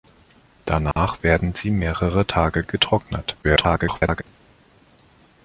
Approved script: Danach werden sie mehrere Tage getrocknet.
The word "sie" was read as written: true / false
true